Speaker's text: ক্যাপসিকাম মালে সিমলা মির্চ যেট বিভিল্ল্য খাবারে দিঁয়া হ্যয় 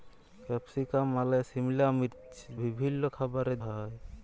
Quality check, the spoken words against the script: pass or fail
fail